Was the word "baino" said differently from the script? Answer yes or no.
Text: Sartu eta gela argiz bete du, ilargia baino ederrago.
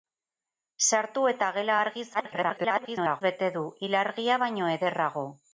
no